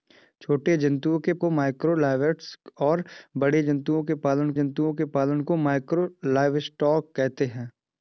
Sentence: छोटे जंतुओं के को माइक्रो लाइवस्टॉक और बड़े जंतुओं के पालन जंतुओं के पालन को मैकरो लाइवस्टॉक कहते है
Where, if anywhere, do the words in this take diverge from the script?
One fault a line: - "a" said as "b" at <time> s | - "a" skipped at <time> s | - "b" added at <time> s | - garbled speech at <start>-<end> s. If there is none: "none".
none